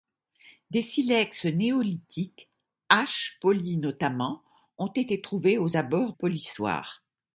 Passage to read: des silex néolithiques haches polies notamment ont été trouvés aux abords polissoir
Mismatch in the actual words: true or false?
false